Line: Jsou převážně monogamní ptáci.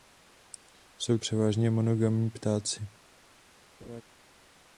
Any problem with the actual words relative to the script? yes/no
no